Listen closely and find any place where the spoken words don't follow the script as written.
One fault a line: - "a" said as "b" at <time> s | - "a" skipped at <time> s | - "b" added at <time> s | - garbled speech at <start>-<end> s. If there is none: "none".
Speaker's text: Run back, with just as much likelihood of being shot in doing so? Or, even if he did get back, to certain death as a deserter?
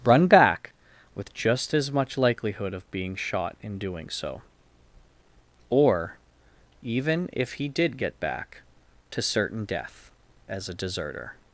none